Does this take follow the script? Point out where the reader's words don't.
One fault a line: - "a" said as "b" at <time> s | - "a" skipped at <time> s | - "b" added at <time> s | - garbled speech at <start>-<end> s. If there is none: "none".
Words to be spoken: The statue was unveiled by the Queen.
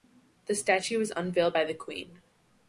none